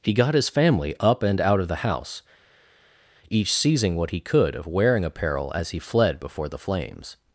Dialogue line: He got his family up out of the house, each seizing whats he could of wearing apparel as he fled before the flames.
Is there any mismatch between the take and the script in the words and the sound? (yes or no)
yes